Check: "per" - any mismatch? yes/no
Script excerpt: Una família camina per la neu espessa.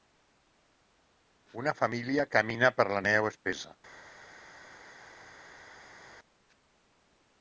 no